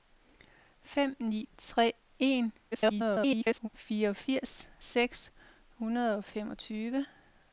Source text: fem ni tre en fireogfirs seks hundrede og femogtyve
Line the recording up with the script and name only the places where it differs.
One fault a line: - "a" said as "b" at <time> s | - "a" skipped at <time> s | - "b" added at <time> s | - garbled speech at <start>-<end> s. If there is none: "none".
- garbled speech at 2.7-3.7 s